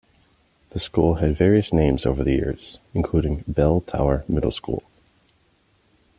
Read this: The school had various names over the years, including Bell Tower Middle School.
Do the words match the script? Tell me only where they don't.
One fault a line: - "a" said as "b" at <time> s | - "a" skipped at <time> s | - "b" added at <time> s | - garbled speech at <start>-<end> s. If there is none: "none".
none